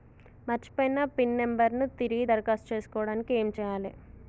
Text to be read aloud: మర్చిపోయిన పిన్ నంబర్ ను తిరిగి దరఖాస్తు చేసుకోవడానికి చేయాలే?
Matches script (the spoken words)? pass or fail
fail